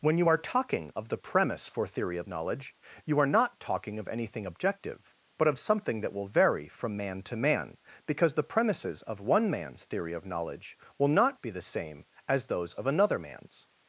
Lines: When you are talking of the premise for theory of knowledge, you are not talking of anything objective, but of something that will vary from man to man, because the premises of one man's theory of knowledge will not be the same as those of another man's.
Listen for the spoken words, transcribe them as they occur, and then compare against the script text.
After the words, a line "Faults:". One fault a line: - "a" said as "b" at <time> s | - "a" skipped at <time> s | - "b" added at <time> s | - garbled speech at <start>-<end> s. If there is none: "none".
When you are talking of the premise for theory of knowledge, you are not talking of anything objective, but of something that will vary from man to man, because the premises of one man's theory of knowledge will not be the same as those of another man's.
Faults:
none